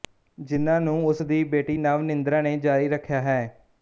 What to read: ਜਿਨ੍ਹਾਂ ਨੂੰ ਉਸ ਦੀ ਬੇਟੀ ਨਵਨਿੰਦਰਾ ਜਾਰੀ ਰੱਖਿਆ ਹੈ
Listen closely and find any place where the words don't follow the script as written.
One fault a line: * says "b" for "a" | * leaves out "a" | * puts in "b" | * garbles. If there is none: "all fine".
* puts in "ਨੇ"